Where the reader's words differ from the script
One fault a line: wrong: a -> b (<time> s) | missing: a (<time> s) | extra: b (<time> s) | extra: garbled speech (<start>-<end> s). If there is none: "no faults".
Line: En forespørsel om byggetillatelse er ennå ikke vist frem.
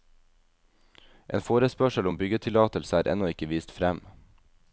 no faults